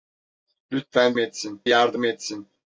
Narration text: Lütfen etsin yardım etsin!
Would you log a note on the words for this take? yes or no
no